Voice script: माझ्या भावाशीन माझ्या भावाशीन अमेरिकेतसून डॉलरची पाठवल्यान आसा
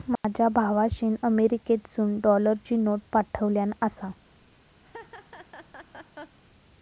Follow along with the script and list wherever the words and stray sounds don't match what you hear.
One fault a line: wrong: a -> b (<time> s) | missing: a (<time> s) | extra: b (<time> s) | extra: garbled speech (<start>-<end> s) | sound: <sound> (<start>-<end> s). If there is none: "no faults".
sound: dropout (0.2-0.2 s)
missing: माझ्या भावाशीन (1.1 s)
extra: नोट (2.8 s)
sound: laugh (4.8-6.4 s)